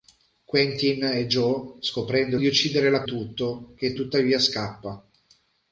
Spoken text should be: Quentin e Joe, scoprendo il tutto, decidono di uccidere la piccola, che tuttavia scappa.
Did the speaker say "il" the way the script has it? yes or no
no